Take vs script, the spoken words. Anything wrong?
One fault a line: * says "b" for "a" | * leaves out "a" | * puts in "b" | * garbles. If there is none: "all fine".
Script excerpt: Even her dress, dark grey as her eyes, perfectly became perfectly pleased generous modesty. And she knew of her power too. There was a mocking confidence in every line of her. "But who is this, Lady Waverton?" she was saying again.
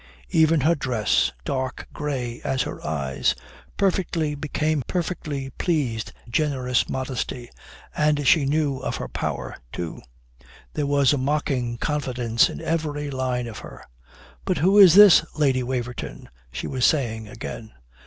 all fine